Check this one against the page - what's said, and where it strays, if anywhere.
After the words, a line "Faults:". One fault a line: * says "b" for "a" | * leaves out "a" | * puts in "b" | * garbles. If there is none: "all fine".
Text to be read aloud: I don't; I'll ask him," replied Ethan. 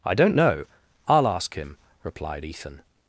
I don't know; I'll ask him," replied Ethan.
Faults:
* puts in "know"